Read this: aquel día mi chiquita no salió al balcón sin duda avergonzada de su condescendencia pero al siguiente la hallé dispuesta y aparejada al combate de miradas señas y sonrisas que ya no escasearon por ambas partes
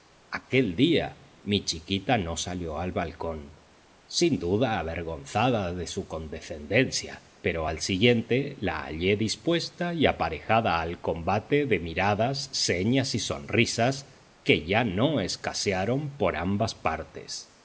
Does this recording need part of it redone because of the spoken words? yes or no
no